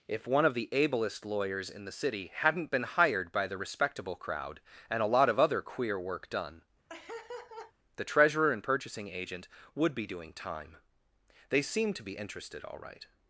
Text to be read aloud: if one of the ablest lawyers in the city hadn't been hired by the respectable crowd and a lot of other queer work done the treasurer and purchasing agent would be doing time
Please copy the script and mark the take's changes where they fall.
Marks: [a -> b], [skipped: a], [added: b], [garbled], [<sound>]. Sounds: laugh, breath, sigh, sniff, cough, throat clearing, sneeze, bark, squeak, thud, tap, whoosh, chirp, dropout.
if one of the ablest lawyers in the city hadn't been hired by the respectable crowd and a lot of other queer work done [laugh] the treasurer and purchasing agent would be doing time [added: they seemed to be interested all right]